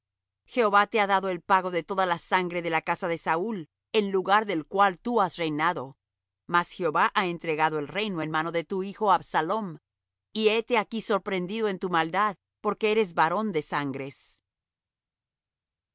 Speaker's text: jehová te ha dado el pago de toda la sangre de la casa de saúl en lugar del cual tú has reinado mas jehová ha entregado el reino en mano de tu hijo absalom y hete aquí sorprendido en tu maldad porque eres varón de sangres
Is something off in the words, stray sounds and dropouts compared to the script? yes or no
no